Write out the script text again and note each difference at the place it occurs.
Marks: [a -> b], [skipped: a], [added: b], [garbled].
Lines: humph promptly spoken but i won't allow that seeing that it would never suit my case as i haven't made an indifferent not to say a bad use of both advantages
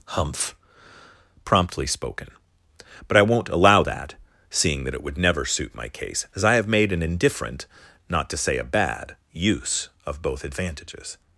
humph promptly spoken but i won't allow that seeing that it would never suit my case as i [haven't -> have] made an indifferent not to say a bad use of both advantages